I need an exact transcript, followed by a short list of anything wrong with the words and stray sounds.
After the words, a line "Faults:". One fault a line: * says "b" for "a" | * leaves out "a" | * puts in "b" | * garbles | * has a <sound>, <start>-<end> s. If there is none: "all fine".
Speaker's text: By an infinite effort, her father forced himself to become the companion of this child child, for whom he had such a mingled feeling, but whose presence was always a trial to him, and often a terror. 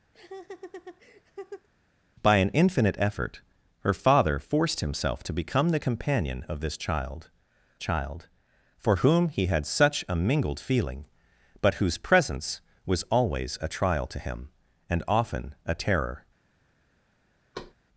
By an infinite effort, her father forced himself to become the companion of this child child, for whom he had such a mingled feeling, but whose presence was always a trial to him, and often a terror.
Faults:
* has a laugh, 0.1-1.7 s
* has a thud, 17.5-17.7 s